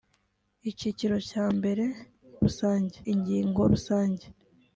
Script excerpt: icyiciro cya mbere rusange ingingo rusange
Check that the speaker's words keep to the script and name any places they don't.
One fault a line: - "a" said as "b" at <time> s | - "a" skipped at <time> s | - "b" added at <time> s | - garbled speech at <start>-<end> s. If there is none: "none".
none